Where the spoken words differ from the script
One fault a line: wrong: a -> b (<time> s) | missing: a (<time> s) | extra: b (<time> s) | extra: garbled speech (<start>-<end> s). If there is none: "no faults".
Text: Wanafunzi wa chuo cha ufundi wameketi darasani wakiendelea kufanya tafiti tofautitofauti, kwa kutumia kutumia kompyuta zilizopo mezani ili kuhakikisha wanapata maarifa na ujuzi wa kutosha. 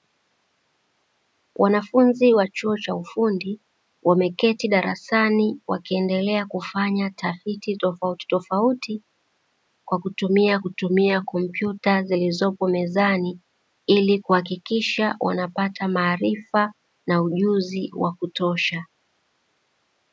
no faults